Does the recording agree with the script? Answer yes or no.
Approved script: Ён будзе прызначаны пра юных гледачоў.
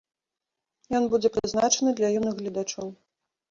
no